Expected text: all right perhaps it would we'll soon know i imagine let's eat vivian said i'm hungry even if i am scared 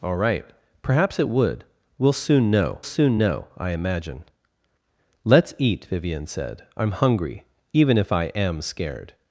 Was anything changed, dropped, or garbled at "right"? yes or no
no